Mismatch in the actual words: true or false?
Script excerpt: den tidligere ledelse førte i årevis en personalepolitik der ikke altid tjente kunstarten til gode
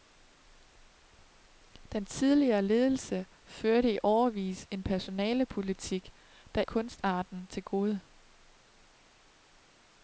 true